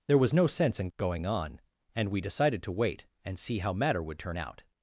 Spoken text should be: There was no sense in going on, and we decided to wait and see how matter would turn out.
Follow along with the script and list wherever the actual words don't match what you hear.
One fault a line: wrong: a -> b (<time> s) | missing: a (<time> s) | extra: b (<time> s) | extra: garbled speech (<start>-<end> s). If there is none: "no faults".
no faults